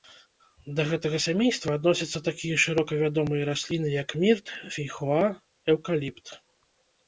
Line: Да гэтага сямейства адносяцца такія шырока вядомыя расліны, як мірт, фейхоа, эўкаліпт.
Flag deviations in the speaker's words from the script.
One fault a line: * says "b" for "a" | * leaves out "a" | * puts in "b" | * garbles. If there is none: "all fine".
all fine